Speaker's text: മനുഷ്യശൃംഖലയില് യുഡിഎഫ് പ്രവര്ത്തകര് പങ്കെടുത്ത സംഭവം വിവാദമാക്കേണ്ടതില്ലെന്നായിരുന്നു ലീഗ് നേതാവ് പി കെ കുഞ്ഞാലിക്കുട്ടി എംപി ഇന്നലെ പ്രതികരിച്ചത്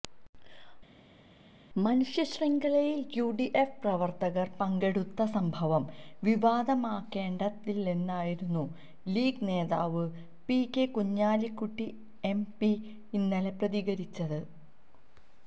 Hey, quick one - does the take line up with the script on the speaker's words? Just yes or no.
yes